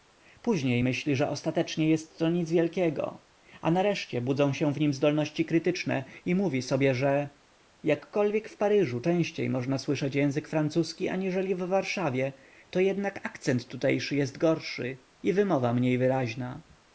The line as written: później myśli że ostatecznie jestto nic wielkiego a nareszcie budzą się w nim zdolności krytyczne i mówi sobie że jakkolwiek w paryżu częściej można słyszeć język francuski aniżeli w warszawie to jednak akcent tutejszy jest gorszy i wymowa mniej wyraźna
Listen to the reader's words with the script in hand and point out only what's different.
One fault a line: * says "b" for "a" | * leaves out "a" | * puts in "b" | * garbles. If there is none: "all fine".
all fine